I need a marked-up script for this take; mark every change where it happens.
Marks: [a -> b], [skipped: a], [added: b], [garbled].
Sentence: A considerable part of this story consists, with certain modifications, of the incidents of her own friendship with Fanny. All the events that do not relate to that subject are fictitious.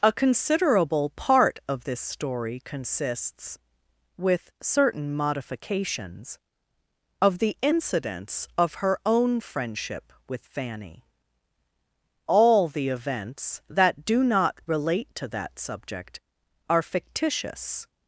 A considerable part of this story consists, with certain modifications, of the incidents of her own friendship with Fanny. All the events that do not relate to that subject are fictitious.